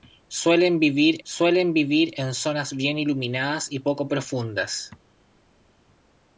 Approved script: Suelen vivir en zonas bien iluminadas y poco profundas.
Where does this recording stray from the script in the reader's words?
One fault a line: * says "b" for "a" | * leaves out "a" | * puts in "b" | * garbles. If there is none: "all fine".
* puts in "suelen vivir"